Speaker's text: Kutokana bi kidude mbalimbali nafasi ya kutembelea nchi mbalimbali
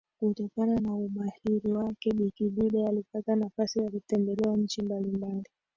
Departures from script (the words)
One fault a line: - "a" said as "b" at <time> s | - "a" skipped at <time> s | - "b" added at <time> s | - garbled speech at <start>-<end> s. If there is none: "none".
- "na umahiri wake" added at 0.8 s
- "mbalimbali" said as "alipata" at 2.9 s